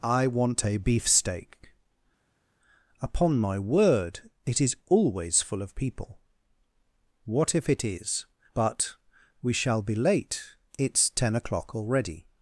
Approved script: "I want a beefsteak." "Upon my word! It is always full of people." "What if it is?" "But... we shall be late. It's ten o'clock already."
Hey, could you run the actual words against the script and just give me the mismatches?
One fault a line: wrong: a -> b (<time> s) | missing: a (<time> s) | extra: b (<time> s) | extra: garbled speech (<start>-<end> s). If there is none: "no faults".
no faults